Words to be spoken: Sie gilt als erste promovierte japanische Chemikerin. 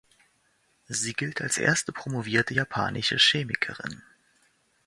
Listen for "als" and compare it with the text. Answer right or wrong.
right